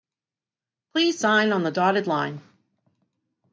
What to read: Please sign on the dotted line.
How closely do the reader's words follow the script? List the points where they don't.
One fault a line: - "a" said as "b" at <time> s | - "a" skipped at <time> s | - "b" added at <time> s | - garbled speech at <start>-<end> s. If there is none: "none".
none